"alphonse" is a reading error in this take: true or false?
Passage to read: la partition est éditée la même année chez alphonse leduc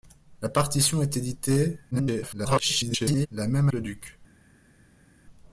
true